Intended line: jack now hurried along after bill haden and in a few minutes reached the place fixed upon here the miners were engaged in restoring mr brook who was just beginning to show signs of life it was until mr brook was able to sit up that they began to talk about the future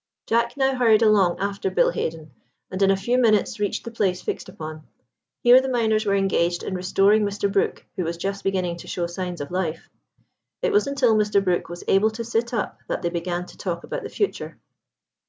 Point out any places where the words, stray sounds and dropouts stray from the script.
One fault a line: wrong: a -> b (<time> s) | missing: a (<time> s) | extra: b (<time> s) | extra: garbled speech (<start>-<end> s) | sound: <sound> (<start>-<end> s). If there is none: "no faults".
no faults